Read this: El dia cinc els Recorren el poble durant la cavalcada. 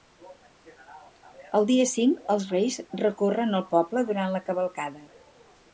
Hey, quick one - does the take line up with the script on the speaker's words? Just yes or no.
no